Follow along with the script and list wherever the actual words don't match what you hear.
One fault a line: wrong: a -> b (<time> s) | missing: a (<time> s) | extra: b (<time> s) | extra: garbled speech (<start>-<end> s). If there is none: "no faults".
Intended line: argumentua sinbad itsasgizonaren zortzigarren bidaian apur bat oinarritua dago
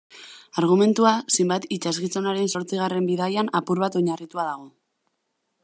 no faults